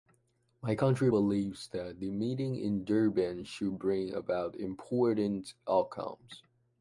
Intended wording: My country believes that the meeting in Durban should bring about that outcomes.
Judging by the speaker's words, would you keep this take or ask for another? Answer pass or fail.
fail